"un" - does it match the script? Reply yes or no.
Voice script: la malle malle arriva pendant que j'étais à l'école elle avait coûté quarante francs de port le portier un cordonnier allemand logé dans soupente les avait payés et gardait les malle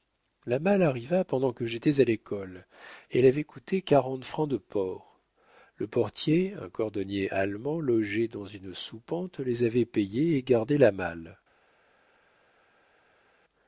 yes